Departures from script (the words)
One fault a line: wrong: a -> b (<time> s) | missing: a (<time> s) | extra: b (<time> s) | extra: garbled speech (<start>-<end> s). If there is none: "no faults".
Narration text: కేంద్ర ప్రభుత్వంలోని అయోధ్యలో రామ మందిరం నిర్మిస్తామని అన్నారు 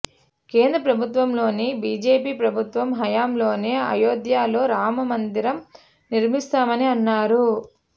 extra: బీజేపీ ప్రభుత్వం హయాంలోనే (1.8 s)